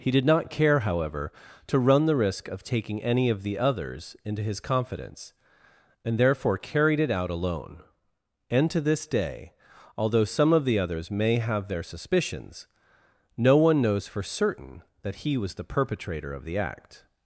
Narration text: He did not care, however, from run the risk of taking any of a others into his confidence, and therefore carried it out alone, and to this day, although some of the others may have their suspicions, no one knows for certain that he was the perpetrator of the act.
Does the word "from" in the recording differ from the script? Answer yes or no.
yes